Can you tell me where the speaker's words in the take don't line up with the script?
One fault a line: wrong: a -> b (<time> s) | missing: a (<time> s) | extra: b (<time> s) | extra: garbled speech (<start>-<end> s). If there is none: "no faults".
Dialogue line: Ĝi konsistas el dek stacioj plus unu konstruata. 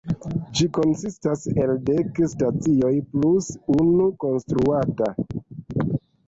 no faults